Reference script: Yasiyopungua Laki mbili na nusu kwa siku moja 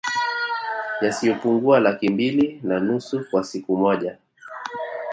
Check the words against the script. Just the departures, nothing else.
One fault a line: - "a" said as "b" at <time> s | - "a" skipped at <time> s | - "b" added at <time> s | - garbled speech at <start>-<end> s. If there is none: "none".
none